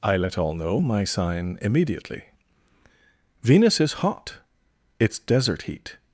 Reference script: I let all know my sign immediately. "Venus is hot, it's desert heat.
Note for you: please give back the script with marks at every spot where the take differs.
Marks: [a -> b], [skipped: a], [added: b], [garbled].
I let all know my sign immediately. "Venus is hot, it's desert heat.